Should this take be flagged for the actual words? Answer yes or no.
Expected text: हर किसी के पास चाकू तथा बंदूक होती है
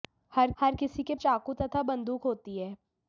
yes